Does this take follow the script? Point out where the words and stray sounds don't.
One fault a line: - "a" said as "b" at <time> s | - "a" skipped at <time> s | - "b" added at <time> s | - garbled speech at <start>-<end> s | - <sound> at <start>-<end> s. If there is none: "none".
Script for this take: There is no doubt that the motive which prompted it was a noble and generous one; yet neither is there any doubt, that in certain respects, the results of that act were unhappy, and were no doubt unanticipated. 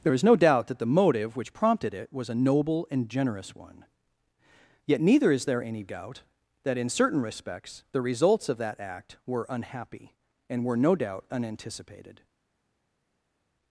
none